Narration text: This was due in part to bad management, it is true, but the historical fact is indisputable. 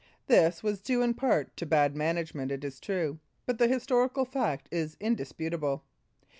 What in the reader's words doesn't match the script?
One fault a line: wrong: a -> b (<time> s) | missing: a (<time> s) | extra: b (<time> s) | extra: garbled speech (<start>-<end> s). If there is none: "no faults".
no faults